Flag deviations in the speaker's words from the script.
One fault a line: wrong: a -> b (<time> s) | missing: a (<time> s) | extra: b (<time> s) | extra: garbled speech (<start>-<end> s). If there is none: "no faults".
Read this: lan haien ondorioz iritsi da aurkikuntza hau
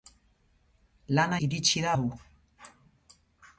missing: haien ondorioz (1.4 s)
missing: aurkikuntza (1.9 s)